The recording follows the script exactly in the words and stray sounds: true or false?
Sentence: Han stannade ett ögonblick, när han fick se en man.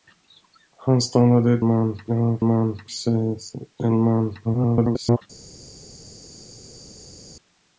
false